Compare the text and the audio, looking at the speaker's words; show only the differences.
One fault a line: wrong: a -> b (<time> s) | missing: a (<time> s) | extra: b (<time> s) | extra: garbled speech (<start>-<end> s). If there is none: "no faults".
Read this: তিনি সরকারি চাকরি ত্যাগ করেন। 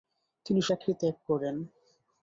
missing: সরকারি (0.6 s)